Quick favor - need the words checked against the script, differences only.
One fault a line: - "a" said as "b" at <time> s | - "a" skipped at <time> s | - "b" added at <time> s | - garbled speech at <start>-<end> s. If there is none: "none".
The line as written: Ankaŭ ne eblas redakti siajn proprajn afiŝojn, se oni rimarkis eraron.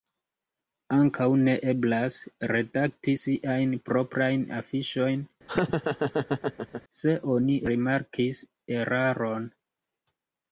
none